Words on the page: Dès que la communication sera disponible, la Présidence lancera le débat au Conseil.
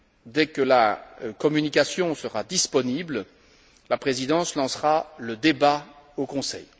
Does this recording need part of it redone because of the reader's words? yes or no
no